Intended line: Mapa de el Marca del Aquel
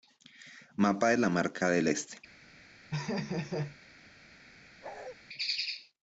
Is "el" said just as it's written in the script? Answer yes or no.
no